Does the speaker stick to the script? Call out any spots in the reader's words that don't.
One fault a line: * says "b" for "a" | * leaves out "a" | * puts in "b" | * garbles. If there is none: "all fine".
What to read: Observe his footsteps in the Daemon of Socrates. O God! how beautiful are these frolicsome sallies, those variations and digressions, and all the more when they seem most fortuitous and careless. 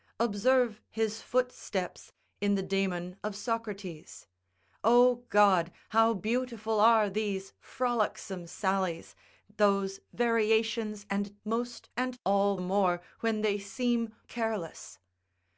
* says "most" for "digressions"
* leaves out "the"
* leaves out "most fortuitous and"